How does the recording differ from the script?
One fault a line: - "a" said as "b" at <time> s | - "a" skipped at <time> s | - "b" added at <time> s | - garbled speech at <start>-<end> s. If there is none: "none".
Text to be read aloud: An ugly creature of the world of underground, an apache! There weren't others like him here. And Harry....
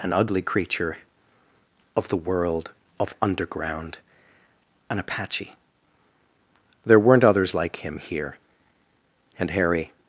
none